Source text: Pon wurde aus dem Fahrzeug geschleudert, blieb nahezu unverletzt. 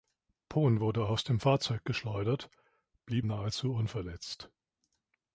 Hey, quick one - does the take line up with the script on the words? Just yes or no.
yes